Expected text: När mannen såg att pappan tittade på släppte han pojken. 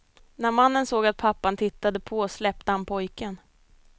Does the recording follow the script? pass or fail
pass